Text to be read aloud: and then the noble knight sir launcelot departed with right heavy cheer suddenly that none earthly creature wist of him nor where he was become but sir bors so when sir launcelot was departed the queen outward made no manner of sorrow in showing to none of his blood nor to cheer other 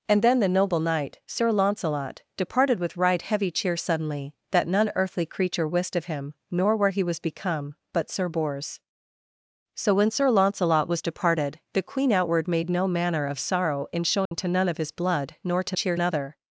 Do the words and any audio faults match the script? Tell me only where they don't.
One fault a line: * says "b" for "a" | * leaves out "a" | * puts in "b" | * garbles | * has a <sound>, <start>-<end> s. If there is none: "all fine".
* has a dropout, 14.3-14.3 s